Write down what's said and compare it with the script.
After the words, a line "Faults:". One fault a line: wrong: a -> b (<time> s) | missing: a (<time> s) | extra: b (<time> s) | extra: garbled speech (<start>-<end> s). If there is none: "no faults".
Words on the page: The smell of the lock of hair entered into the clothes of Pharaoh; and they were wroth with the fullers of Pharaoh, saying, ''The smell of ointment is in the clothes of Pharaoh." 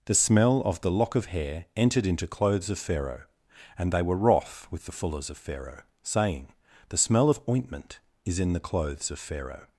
The smell of the lock of hair entered into clothes of Pharaoh; and they were wroth with the fullers of Pharaoh, saying, ''The smell of ointment is in the clothes of Pharaoh."
Faults:
missing: the (2.3 s)